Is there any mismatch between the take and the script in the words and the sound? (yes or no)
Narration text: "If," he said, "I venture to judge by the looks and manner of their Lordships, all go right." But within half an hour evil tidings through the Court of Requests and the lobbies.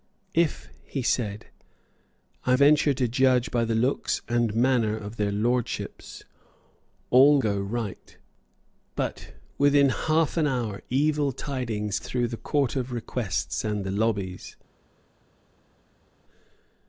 no